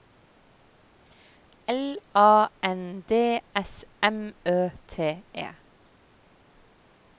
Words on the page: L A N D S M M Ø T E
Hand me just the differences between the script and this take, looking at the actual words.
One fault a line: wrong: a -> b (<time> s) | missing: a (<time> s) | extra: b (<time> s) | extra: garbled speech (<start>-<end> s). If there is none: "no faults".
missing: M (4.3 s)